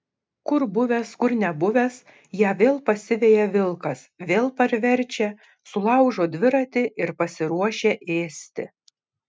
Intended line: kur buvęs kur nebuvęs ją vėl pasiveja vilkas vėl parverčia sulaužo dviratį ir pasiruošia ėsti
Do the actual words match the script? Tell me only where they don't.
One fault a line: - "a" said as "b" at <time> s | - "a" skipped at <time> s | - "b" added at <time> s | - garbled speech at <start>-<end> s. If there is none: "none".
none